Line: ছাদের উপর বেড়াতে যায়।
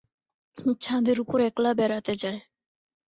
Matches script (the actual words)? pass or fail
fail